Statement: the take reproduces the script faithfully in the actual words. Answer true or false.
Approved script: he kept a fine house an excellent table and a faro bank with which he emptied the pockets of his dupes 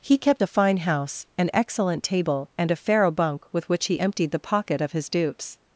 false